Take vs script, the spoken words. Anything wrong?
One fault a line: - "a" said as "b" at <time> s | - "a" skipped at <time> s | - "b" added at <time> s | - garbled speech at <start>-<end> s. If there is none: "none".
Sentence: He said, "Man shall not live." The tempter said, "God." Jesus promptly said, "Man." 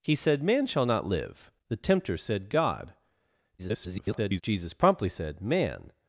- garbled speech at 3.6-4.4 s